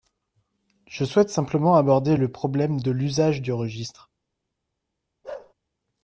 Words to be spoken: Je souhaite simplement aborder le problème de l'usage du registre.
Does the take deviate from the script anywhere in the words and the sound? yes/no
yes